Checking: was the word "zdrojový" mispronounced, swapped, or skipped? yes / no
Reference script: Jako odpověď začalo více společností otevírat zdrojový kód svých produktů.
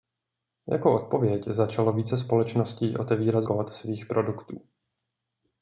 yes